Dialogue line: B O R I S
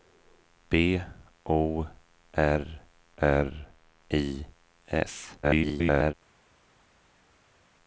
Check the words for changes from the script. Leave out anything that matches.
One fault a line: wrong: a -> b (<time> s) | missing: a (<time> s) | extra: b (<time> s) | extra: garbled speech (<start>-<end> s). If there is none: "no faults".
extra: R (3.2 s)
extra: garbled speech (5.4-6.1 s)